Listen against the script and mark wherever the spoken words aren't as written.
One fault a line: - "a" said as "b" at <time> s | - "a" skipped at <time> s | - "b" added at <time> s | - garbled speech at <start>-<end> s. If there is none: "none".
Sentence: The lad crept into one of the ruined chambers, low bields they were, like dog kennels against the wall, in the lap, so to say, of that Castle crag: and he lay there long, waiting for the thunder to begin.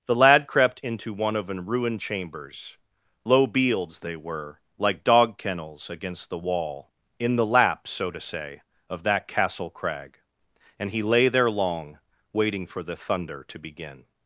- "the" said as "an" at 1.5 s